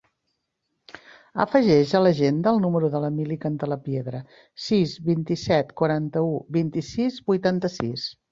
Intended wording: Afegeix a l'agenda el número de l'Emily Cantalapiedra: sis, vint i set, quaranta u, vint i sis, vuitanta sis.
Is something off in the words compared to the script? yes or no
no